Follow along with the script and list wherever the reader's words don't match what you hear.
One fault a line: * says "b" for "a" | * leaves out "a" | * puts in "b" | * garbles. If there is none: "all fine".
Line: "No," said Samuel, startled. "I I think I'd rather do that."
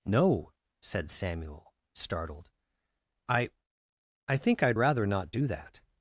* puts in "not"